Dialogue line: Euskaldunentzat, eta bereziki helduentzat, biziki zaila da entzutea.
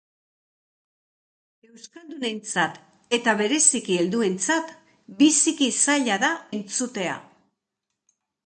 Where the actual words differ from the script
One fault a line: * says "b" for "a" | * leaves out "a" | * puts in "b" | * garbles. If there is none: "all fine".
all fine